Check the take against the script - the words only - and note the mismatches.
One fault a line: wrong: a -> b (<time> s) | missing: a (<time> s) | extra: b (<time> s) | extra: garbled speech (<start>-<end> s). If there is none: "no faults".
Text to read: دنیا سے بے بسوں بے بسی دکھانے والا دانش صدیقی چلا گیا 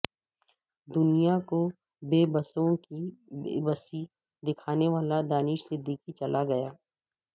wrong: سے -> کو (1.5 s)
extra: کی (2.8 s)